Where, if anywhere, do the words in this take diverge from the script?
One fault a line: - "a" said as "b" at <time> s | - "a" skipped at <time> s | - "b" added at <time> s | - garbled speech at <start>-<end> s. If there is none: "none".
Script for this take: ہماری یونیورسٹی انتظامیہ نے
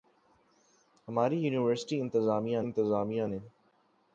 - "انتظامیہ" added at 2.6 s